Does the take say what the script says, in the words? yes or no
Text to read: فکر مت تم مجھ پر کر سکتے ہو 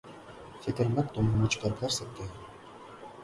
yes